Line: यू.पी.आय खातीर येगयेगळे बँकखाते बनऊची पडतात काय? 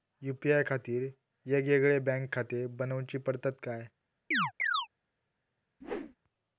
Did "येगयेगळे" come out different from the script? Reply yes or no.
no